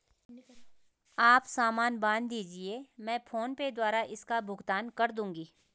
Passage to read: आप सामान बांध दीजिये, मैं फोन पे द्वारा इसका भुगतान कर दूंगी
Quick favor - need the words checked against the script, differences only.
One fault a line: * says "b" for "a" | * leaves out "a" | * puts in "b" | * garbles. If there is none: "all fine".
all fine